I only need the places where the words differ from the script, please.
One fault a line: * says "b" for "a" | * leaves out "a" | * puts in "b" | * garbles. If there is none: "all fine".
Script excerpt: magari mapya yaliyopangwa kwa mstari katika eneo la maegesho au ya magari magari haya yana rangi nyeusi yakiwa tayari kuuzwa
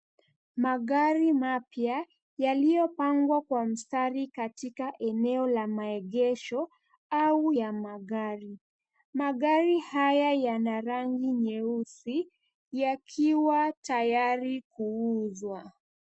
all fine